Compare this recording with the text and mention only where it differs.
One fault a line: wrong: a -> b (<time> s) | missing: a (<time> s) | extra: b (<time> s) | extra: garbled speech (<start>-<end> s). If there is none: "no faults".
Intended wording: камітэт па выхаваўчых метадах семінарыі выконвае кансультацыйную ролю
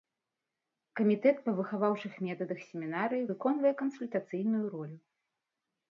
no faults